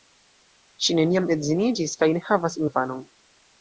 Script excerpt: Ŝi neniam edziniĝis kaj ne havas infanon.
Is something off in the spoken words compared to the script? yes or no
no